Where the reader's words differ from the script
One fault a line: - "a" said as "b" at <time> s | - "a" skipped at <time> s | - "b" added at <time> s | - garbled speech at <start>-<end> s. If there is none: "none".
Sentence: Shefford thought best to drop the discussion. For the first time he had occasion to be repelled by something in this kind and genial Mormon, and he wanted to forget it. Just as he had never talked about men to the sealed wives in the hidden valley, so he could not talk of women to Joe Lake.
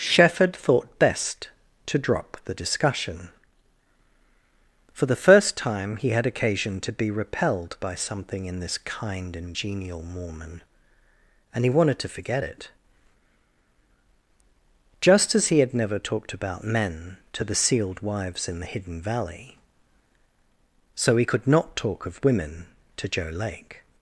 none